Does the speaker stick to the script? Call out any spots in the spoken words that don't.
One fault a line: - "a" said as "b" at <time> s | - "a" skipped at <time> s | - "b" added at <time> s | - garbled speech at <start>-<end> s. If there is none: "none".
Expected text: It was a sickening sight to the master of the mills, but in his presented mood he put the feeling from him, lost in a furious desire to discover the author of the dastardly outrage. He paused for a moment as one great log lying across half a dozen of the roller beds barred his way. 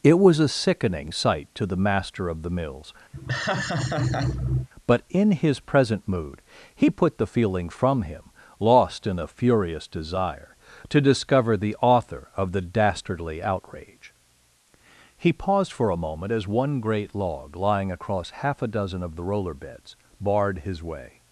- "presented" said as "present" at 5.6 s